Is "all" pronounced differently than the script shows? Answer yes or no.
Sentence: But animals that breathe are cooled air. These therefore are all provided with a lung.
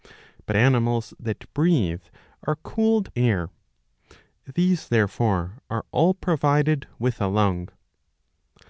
no